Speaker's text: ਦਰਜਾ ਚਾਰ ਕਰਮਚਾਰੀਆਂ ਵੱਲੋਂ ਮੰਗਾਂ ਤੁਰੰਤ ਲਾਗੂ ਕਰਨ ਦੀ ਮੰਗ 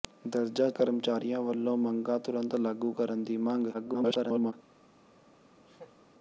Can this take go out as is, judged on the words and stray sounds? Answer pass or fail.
fail